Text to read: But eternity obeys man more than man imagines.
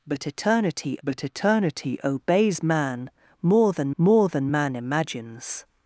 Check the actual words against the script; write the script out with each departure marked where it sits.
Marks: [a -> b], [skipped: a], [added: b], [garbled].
But eternity [added: but eternity] obeys man more than [added: more than] man imagines.